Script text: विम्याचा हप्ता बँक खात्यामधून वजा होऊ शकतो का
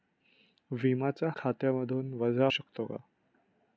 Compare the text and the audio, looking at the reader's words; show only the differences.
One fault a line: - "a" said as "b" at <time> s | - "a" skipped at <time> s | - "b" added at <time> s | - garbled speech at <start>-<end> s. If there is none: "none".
- "हप्ता बँक" skipped at 1.3 s
- "होऊ" skipped at 2.5 s